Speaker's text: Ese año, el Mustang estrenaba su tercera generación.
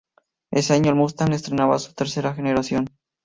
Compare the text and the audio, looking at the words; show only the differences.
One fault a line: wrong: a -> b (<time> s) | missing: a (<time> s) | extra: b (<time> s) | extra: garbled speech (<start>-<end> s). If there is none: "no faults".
no faults